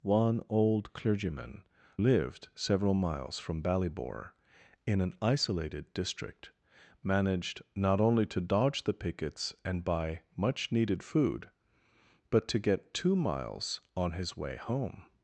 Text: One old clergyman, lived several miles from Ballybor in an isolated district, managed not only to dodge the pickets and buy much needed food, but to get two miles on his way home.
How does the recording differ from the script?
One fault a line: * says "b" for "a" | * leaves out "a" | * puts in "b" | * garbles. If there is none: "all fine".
all fine